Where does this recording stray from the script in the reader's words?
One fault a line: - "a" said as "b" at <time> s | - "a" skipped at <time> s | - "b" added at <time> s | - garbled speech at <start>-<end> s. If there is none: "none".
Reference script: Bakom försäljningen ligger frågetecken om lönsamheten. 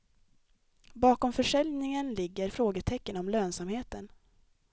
none